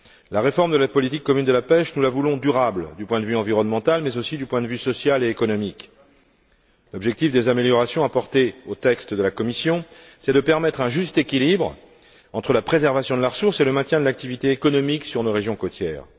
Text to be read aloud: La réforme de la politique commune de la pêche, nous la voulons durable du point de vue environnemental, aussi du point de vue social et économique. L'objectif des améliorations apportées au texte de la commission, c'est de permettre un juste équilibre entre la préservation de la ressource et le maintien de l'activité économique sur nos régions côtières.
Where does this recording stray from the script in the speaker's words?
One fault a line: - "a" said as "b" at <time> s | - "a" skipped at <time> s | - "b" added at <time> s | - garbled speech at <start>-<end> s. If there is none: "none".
- "mais" added at 4.0 s